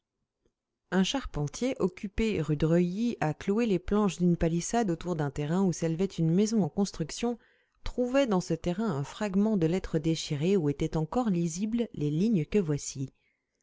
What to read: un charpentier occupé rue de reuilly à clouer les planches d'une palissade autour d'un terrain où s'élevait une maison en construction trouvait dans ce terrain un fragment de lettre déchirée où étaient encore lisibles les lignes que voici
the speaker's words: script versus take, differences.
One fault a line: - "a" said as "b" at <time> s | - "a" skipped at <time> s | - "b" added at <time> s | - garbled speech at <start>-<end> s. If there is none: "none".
none